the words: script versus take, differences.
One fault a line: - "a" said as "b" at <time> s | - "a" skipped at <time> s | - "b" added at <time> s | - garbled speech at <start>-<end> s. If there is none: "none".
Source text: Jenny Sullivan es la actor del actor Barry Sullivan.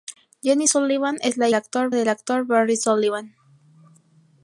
none